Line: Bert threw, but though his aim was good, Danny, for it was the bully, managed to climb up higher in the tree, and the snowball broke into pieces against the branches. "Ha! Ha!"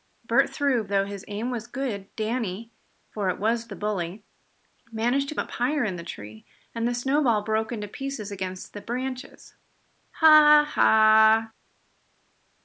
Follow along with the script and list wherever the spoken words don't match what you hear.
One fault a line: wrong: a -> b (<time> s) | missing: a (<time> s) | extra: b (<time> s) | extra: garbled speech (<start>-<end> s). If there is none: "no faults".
missing: but (0.8 s)
missing: climb (5.4 s)